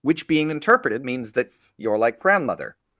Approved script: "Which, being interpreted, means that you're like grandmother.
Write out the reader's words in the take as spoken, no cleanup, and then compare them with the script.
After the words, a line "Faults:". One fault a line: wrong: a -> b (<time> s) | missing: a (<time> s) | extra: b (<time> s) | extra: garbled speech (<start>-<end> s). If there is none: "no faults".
"Which, being interpreted, means that you're like grandmother.
Faults:
no faults